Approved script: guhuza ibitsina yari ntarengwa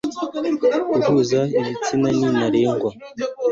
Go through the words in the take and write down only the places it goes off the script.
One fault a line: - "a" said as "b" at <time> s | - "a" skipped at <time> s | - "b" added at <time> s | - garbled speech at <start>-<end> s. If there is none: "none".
- "yari" said as "ni" at 2.2 s